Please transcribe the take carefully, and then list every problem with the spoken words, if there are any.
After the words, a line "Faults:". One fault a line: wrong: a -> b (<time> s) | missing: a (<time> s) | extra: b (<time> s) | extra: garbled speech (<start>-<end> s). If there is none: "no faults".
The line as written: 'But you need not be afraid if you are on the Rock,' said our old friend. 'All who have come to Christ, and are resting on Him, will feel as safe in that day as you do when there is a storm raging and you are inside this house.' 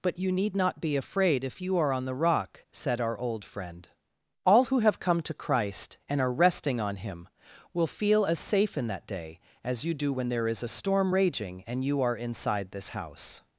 'But you need not be afraid if you are on the Rock,' said our old friend. 'All who have come to Christ, and are resting on Him, will feel as safe in that day as you do when there is a storm raging and you are inside this house.'
Faults:
no faults